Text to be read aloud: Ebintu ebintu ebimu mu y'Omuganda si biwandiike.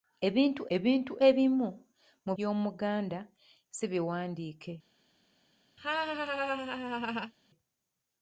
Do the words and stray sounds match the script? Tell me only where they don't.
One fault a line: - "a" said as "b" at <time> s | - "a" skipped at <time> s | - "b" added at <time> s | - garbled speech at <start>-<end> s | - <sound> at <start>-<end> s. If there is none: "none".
- laugh at 5.8-7.3 s